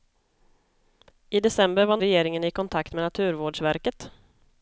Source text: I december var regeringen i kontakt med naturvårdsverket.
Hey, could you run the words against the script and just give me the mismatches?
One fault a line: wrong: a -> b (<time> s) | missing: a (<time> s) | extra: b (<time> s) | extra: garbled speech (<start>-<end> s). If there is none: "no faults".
no faults